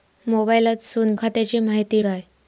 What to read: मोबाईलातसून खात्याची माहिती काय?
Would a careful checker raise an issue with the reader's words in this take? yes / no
no